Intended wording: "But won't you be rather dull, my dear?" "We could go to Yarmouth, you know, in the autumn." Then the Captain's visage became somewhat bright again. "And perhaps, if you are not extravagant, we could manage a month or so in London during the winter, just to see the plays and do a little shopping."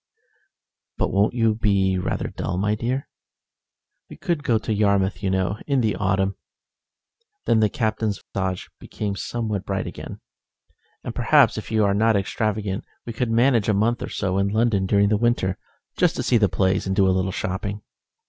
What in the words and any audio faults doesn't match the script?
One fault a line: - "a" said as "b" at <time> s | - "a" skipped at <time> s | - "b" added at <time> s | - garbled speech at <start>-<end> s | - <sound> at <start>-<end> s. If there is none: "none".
- dropout at 8.2-8.3 s